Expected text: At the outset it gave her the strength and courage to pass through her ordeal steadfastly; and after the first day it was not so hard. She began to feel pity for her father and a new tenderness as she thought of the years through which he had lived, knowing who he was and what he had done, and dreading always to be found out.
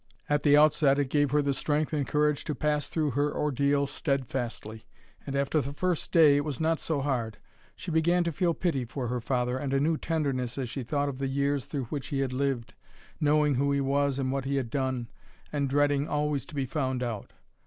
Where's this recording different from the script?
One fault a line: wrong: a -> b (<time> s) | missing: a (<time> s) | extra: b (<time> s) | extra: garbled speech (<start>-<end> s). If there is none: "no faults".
no faults